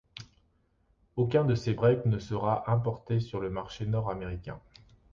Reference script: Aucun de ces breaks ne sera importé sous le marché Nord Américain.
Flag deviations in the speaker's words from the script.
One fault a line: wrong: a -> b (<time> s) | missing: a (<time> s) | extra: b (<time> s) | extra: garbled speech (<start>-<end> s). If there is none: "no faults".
wrong: sous -> sur (3.2 s)